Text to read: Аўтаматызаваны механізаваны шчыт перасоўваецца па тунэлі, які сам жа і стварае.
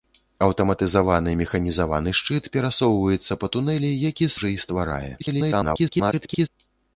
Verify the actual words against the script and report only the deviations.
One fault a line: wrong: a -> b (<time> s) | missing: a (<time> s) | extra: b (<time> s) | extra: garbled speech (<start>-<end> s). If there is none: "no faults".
missing: сам (4.3 s)
extra: garbled speech (5.2-6.5 s)